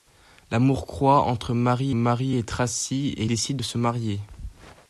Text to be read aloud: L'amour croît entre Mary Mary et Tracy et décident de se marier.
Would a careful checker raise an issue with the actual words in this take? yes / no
no